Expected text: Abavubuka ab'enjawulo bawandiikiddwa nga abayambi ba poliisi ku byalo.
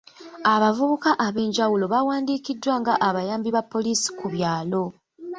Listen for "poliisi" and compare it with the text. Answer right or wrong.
right